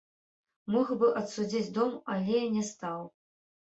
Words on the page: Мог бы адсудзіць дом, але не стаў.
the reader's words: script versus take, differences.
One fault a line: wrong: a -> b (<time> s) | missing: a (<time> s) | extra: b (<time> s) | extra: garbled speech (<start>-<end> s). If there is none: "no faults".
no faults